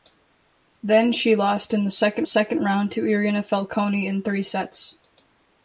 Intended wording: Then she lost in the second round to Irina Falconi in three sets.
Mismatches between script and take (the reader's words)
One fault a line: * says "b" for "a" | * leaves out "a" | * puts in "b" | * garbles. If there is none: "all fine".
* puts in "second"